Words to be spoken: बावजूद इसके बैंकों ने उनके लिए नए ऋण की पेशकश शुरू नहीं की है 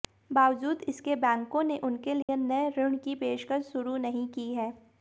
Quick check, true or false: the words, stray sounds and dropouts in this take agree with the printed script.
false